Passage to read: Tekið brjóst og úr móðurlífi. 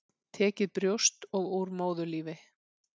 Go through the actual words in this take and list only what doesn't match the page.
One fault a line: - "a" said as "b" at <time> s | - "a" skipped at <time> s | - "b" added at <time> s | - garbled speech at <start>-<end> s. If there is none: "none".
none